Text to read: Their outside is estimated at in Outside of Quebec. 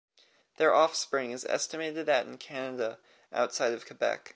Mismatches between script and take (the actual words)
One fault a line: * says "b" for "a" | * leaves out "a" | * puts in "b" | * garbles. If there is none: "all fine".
* says "offspring" for "outside"
* puts in "Canada"